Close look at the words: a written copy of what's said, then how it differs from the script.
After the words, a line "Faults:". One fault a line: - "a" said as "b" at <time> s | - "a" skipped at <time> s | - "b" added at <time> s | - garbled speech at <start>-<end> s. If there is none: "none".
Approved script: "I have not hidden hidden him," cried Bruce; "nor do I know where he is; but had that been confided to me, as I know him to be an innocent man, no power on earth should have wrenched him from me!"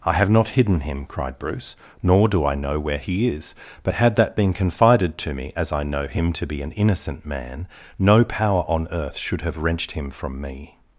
"I have not hidden him," cried Bruce; "nor do I know where he is; but had that been confided to me, as I know him to be an innocent man, no power on earth should have wrenched him from me!"
Faults:
- "hidden" skipped at 0.8 s